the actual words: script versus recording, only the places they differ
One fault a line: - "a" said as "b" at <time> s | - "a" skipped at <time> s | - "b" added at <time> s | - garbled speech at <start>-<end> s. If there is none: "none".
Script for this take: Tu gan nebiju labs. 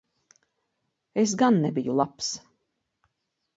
- "Tu" said as "Es" at 1.2 s